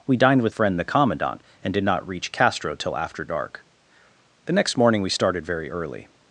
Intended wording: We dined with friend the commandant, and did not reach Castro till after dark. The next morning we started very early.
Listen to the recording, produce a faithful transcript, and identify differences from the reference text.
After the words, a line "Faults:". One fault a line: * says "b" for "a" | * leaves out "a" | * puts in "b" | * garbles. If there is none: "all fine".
We dined with friend the commandant, and did not reach Castro till after dark. The next morning we started very early.
Faults:
all fine